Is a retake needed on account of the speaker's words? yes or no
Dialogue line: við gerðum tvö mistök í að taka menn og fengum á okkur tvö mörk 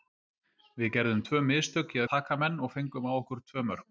yes